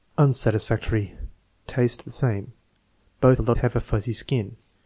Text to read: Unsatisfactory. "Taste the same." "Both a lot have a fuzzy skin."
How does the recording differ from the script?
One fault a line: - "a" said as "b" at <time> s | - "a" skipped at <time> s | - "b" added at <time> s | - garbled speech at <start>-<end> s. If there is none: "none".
none